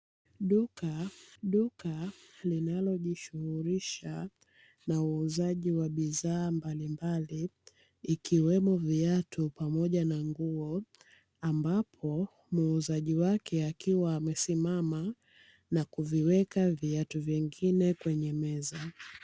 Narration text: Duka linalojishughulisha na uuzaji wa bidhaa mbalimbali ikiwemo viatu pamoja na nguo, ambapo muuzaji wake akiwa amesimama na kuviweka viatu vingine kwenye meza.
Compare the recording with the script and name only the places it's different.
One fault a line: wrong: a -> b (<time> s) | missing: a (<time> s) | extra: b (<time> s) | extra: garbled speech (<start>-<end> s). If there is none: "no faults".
extra: duka (1.4 s)